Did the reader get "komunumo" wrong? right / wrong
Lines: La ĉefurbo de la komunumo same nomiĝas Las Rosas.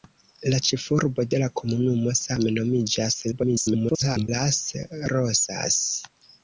right